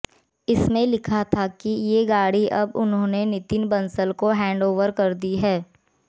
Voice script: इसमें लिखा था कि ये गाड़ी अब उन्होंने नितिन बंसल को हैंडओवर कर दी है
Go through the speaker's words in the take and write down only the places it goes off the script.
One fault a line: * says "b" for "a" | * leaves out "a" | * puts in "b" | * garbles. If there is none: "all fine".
all fine